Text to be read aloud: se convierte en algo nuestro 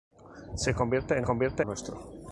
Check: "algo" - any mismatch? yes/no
yes